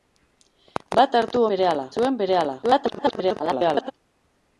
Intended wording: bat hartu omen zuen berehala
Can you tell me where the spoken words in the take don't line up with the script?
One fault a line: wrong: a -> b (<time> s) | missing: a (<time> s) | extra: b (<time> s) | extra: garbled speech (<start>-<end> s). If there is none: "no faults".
wrong: omen -> berehala (1.5 s)
extra: garbled speech (2.6-3.9 s)